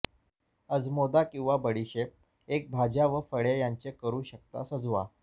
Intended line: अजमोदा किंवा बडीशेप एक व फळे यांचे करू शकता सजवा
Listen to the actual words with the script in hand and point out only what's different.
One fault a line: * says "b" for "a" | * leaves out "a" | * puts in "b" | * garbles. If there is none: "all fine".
* puts in "भाज्या"